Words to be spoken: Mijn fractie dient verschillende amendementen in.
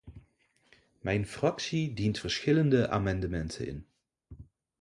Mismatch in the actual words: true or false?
false